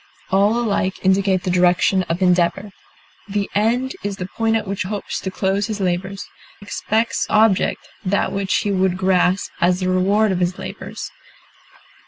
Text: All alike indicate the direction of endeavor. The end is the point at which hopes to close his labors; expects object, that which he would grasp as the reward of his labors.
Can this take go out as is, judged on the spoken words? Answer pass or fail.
pass